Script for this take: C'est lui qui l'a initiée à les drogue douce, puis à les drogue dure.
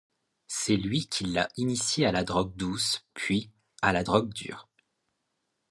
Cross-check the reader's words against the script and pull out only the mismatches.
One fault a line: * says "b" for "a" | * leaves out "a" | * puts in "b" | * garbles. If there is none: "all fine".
* says "la" for "les"
* says "la" for "les"